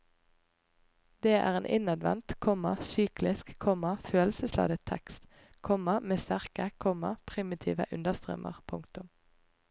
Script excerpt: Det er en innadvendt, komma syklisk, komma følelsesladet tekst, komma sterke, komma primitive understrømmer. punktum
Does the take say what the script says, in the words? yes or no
no